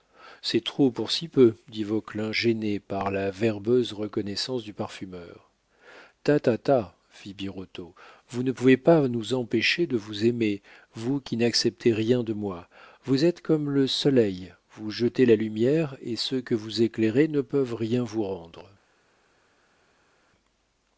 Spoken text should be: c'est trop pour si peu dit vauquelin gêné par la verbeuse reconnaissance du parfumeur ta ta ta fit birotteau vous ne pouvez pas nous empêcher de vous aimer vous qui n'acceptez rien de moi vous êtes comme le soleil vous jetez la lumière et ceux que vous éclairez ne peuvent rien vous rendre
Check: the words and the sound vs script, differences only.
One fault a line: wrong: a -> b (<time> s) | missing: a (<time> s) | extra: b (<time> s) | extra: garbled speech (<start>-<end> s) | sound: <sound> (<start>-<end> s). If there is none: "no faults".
no faults